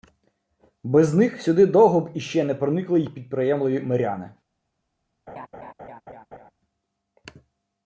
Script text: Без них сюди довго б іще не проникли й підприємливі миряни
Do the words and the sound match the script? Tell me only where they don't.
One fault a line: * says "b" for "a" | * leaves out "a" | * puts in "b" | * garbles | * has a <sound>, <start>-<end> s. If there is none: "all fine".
* has a laugh, 5.3-6.5 s